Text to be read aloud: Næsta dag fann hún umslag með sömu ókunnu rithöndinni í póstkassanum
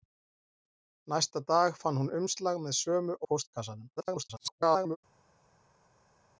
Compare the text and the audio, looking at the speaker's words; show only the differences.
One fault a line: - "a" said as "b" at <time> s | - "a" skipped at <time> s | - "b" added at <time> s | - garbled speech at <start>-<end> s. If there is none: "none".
- "ókunnu rithöndinni" skipped at 3.2 s
- garbled speech at 4.0-5.0 s